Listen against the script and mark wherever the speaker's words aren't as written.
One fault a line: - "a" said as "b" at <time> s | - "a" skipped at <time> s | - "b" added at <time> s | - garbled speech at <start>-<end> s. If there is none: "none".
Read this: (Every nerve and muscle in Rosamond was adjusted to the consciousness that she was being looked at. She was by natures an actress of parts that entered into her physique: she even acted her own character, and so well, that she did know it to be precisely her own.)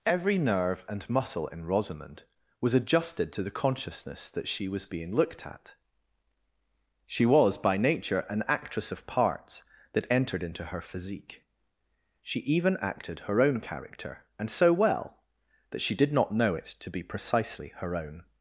- "natures" said as "nature" at 7.8 s
- "not" added at 16.1 s